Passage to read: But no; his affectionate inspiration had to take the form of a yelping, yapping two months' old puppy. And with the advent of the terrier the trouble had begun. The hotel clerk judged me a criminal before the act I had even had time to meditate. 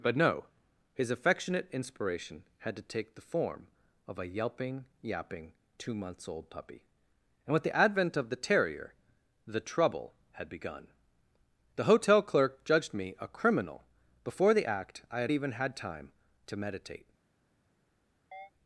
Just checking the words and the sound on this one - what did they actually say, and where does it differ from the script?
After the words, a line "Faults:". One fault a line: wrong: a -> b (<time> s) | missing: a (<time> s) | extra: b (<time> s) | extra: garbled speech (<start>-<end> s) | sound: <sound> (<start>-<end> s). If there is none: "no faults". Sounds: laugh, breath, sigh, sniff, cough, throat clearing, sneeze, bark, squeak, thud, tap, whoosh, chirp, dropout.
But no; his affectionate inspiration had to take the form of a yelping, yapping two months' old puppy. And with the advent of the terrier the trouble had begun. The hotel clerk judged me a criminal before the act I had even had time to meditate.
Faults:
sound: chirp (18.3-18.5 s)